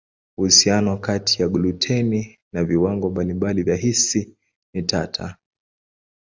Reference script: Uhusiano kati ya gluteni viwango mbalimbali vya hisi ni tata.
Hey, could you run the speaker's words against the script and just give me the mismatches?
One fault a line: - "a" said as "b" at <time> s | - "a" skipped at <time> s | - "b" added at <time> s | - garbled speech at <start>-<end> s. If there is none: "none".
- "na" added at 2.5 s